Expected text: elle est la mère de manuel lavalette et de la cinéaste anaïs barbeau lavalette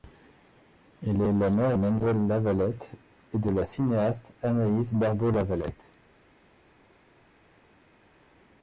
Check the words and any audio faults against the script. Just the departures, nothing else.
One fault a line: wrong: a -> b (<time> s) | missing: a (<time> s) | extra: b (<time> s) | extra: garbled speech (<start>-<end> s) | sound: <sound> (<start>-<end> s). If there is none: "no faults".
missing: de (1.8 s)